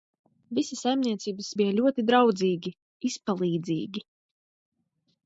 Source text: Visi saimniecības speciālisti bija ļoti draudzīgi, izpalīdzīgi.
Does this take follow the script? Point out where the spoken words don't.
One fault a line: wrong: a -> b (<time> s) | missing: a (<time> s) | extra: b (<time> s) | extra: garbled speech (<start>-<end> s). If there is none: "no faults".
missing: speciālisti (1.5 s)